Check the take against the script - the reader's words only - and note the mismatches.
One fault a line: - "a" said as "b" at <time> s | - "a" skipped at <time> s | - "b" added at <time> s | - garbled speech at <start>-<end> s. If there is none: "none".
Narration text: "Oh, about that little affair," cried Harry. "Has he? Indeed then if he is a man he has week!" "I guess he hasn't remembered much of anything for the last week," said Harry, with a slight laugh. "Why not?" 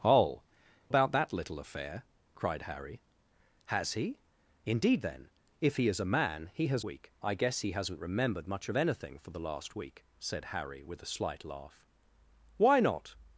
none